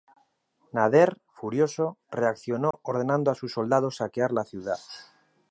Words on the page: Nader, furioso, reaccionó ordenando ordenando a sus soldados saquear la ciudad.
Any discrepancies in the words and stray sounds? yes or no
yes